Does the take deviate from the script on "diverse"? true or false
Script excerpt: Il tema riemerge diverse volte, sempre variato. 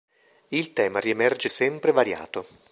true